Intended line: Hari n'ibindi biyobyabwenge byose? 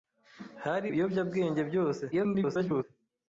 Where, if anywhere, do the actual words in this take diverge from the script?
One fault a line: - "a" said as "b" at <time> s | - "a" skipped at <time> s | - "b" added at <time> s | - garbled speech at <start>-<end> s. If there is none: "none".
- "n'ibindi" skipped at 0.9 s
- garbled speech at 2.1-2.8 s